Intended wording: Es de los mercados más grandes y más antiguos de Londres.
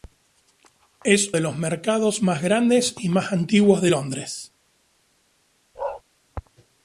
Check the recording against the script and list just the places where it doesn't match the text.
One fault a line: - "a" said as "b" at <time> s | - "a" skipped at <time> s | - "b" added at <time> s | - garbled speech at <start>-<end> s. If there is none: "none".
none